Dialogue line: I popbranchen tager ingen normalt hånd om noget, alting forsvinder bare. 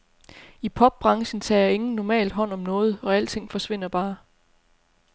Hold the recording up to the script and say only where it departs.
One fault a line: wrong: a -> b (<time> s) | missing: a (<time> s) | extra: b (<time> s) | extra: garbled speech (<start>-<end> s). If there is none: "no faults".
extra: og (3.0 s)